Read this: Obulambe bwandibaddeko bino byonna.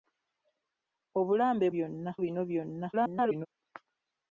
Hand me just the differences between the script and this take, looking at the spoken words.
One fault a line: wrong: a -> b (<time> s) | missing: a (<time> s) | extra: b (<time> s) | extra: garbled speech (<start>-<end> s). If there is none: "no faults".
wrong: bwandibaddeko -> byonna (1.7 s)
extra: garbled speech (2.9-3.5 s)